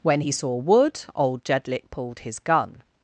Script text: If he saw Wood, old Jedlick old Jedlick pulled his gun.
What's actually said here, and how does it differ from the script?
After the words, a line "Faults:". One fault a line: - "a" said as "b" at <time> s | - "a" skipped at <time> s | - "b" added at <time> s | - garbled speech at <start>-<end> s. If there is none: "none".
When he saw Wood, old Jedlick pulled his gun.
Faults:
- "If" said as "When" at 0.0 s
- "old Jedlick" skipped at 1.9 s